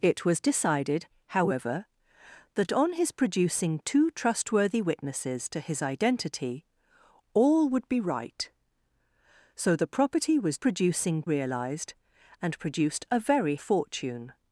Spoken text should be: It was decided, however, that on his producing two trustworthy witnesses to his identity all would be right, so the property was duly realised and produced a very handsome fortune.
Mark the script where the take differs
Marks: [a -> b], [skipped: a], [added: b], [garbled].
It was decided, however, that on his producing two trustworthy witnesses to his identity all would be right, so the property was [duly -> producing] realised and produced a very [skipped: handsome] fortune.